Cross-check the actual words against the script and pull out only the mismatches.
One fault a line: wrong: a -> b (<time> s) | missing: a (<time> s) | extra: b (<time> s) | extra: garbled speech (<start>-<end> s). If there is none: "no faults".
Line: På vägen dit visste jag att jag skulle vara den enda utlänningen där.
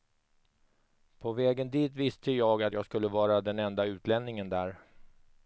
no faults